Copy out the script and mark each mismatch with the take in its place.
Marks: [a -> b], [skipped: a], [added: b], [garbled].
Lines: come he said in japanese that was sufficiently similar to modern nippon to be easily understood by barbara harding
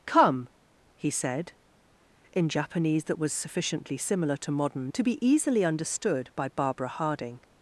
come he said in japanese that was sufficiently similar to modern [skipped: nippon] to be easily understood by barbara harding